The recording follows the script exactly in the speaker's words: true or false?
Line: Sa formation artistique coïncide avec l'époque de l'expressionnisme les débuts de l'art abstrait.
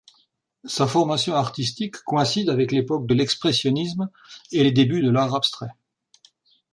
false